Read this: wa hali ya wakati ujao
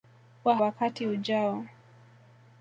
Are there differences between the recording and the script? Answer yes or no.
yes